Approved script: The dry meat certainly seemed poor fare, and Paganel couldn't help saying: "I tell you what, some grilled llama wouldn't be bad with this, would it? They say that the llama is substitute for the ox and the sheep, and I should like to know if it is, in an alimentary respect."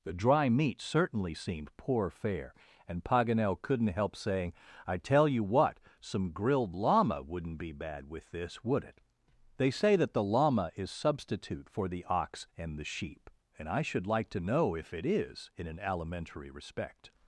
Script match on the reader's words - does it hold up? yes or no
yes